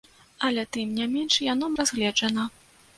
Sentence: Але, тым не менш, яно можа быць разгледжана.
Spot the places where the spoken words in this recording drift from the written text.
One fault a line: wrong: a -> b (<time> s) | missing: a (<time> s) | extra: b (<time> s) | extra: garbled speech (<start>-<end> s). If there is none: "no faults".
missing: можа быць (1.7 s)